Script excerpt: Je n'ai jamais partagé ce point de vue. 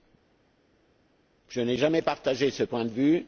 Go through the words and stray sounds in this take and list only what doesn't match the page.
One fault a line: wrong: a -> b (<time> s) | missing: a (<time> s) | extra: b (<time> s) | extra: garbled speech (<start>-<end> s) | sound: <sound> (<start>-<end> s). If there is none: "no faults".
no faults